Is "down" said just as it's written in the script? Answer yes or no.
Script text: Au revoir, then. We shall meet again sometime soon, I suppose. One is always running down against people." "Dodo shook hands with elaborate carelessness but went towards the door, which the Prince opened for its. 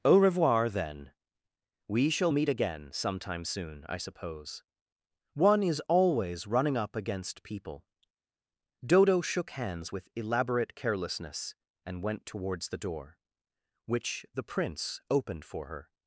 no